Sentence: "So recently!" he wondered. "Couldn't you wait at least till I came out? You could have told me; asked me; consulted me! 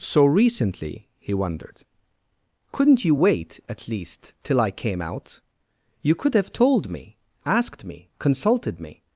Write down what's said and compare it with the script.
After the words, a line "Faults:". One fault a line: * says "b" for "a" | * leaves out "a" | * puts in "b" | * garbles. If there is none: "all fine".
"So recently!" he wondered. "Couldn't you wait at least till I came out? You could have told me; asked me; consulted me!
Faults:
all fine